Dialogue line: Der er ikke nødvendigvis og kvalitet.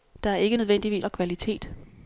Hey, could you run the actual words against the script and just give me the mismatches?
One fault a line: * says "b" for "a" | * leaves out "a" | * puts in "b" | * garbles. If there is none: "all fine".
all fine